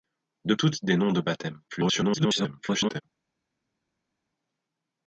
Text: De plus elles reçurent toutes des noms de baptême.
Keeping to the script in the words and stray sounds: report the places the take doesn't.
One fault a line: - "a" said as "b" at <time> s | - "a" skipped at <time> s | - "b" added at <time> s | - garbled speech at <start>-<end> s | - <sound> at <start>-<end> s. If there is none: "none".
- "plus elles reçurent" skipped at 0.6 s
- garbled speech at 1.7-3.0 s